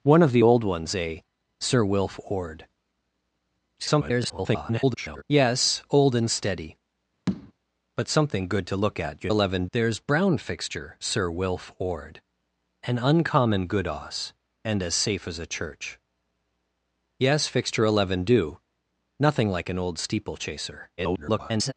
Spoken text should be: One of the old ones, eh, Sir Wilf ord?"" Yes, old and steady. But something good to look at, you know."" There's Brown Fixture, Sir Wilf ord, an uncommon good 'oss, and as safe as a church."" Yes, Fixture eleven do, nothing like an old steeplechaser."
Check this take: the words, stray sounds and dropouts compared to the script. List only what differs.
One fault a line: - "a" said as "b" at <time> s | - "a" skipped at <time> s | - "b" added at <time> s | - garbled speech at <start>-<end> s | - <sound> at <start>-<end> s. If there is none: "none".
- garbled speech at 3.8-5.2 s
- tap at 7.3-7.5 s
- "know" said as "eleven" at 9.3 s
- garbled speech at 21.0-21.7 s